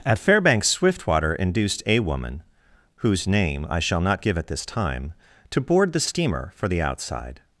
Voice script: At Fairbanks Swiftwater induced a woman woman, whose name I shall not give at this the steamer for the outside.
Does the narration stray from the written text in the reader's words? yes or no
yes